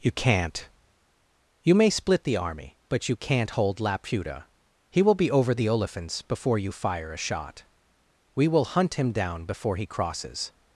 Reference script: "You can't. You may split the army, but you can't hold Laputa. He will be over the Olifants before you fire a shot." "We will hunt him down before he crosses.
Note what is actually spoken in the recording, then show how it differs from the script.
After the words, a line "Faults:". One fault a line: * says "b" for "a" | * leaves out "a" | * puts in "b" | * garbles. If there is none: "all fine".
"You can't. You may split the army, but you can't hold Laputa. He will be over the Olifants before you fire a shot." "We will hunt him down before he crosses.
Faults:
all fine